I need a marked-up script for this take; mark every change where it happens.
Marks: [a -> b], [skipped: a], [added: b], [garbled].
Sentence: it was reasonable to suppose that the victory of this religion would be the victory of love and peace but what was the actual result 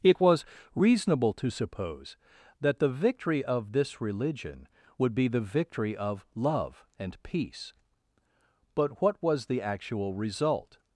it was reasonable to suppose that the victory of this religion would be the victory of love and peace but what was the actual result